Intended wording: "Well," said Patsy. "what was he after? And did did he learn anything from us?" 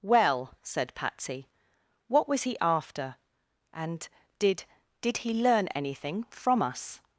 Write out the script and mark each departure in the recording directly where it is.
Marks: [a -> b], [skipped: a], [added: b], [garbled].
"Well," said Patsy. "what was he after? And did did he learn anything from us?"